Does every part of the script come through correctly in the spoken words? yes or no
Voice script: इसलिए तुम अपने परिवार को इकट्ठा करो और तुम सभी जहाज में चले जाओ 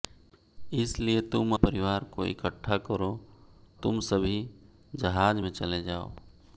no